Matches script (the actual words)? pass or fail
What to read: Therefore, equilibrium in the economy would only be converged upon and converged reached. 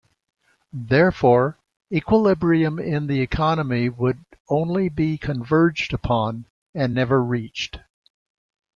fail